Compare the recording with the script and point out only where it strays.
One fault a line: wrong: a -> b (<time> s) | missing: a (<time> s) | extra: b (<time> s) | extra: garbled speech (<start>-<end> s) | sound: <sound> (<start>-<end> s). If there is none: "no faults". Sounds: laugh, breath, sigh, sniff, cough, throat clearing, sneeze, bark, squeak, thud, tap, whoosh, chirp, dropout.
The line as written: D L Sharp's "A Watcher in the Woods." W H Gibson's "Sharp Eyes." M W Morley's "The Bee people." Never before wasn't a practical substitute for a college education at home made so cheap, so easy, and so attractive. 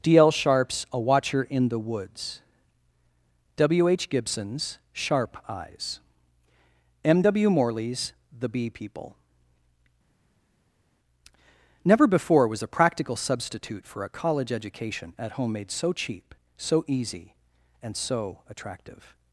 wrong: wasn't -> was (12.5 s)